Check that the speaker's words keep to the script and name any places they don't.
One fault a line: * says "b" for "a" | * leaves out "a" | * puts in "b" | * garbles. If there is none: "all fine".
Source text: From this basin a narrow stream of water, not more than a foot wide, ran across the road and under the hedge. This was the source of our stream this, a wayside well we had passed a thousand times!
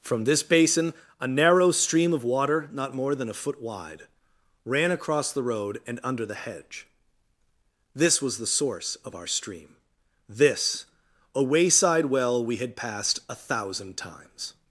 all fine